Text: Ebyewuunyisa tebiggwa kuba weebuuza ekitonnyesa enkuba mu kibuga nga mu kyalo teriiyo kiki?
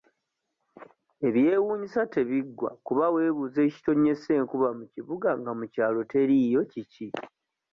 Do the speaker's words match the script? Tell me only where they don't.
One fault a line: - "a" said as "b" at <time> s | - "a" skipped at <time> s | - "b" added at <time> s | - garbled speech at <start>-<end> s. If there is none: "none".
none